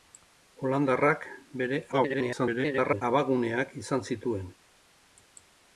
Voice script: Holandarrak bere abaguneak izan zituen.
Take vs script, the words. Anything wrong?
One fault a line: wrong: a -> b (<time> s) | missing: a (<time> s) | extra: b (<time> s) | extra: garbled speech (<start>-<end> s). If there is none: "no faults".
extra: garbled speech (1.9-3.0 s)